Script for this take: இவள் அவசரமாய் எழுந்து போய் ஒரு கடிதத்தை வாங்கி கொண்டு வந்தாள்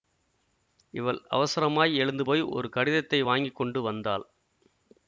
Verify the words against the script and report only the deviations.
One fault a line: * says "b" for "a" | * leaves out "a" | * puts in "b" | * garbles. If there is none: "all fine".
all fine